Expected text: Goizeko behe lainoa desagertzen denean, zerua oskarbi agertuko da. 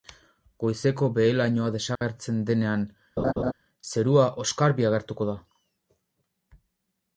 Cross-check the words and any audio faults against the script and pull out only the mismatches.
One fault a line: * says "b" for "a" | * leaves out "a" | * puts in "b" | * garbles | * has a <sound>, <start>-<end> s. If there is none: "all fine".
* has a dropout, 2.0-2.0 s
* has a laugh, 3.2-3.5 s